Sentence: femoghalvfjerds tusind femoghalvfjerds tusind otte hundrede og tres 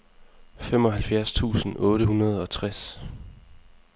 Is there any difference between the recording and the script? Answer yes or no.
yes